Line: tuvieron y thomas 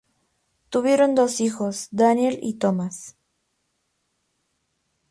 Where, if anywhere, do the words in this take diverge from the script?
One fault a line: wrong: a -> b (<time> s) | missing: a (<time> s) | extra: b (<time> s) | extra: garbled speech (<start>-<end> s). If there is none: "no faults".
extra: dos hijos daniel (1.1 s)